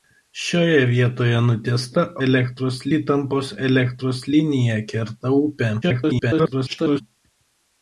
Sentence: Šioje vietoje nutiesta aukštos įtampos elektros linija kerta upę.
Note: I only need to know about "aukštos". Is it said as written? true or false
false